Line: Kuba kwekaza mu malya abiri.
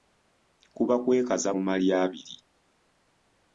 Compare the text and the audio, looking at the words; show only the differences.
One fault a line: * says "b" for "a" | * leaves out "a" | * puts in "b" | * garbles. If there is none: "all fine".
all fine